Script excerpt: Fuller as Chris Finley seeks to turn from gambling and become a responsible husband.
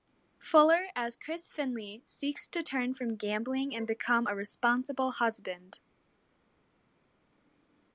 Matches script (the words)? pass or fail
pass